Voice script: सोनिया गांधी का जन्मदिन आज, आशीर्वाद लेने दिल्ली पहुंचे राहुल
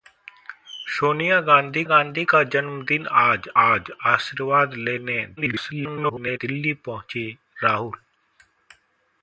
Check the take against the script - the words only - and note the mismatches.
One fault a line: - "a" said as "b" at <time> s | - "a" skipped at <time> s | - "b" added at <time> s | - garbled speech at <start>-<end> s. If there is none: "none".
- "गांधी" added at 1.8 s
- "आज" added at 3.6 s
- garbled speech at 5.4-6.4 s